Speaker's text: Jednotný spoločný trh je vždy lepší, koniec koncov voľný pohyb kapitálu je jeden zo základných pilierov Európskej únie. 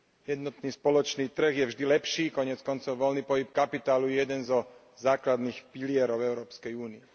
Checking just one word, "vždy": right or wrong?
right